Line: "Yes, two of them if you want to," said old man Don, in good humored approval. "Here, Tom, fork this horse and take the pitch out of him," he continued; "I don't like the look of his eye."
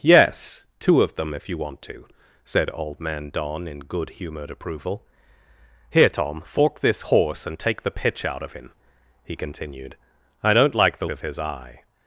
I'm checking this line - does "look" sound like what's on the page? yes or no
no